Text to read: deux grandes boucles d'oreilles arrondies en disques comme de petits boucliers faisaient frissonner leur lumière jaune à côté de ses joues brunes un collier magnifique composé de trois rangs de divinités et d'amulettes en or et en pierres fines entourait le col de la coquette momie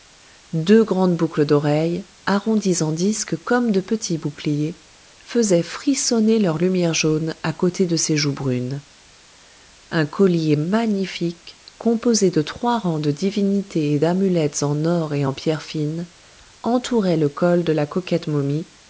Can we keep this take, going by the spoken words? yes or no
yes